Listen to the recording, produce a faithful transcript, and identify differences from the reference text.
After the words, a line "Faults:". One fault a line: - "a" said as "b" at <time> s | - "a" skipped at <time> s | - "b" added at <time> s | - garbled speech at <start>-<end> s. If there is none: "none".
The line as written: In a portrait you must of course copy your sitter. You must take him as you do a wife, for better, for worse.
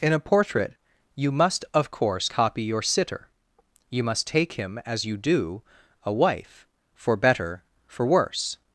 In a portrait you must of course copy your sitter. You must take him as you do a wife, for better, for worse.
Faults:
none